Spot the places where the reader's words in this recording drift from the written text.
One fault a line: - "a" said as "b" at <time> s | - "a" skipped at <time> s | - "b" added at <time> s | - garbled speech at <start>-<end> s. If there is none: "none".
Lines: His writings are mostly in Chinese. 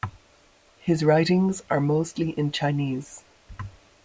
none